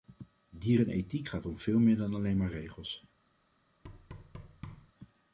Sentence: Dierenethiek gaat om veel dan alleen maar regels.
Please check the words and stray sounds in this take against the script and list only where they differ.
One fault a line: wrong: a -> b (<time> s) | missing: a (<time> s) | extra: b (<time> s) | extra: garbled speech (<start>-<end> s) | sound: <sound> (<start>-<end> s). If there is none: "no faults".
extra: meer (1.8 s)
sound: thud (3.8-4.9 s)